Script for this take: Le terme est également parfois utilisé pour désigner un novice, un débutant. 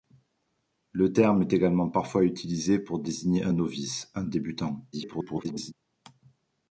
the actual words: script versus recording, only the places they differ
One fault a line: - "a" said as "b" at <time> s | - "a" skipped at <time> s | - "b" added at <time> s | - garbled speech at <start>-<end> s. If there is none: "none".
- garbled speech at 4.9-5.7 s